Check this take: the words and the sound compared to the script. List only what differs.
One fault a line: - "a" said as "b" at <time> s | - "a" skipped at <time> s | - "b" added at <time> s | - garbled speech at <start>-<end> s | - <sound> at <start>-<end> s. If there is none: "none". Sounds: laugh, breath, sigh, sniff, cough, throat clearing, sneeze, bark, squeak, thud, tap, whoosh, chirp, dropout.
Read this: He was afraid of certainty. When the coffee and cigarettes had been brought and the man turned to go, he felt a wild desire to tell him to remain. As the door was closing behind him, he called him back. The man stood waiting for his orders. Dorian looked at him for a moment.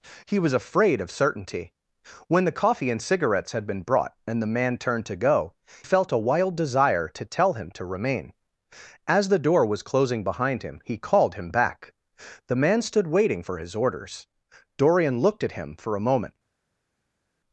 - "he" skipped at 5.5 s